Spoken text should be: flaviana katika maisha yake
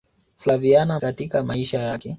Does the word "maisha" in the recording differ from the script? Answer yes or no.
no